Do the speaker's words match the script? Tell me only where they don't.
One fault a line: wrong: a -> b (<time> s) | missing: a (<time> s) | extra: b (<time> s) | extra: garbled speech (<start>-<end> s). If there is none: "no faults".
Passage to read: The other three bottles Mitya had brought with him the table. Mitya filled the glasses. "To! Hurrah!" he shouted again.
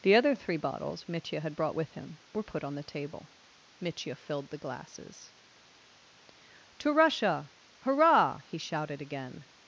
extra: were put on (2.3 s)
extra: Russia (6.9 s)